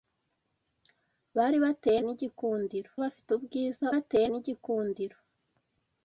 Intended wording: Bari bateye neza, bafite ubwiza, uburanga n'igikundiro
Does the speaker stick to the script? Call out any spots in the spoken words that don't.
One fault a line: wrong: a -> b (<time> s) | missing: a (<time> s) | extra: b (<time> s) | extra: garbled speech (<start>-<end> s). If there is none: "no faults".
wrong: neza -> n'igikundiro (2.0 s)
wrong: uburanga -> bateye (3.9 s)